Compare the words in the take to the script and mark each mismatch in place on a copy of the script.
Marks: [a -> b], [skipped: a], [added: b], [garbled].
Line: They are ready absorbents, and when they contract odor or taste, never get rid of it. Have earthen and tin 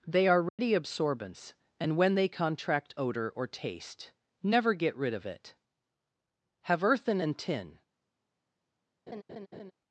They are ready absorbents, and when they contract odor or taste, never get rid of it. Have earthen and tin